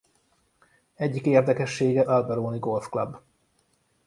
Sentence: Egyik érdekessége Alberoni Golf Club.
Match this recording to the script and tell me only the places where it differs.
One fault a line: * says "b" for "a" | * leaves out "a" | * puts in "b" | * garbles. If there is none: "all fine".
all fine